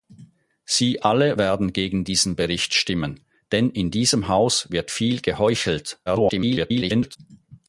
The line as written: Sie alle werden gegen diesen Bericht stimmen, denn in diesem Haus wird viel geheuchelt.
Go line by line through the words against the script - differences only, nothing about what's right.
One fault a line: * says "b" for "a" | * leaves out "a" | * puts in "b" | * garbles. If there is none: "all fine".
* garbles